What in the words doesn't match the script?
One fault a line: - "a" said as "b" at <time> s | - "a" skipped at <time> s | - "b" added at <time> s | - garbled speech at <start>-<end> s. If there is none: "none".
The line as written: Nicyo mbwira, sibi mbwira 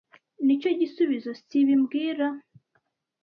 - "mbwira" said as "gisubizo" at 0.8 s